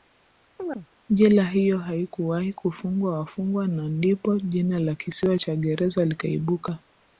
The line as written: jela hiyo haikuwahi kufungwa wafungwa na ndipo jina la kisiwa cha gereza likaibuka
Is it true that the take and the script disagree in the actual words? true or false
false